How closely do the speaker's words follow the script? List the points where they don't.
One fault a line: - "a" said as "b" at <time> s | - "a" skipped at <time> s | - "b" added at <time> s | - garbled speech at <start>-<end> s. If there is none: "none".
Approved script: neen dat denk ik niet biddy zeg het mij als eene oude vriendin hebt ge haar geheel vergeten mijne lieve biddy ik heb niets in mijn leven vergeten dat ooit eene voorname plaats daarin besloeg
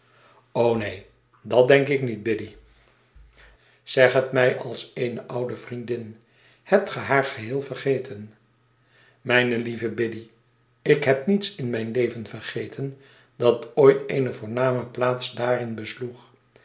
none